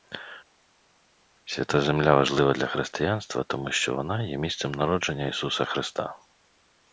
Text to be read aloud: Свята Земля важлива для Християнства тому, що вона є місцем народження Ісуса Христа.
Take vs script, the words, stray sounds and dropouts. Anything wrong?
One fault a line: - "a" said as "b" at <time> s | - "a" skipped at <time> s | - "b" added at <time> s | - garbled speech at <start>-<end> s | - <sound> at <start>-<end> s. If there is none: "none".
none